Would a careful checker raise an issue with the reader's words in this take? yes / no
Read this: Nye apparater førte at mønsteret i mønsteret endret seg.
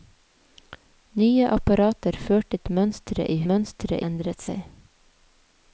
no